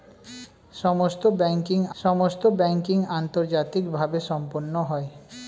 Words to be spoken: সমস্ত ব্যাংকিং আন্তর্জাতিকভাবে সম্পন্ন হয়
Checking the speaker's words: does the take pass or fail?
fail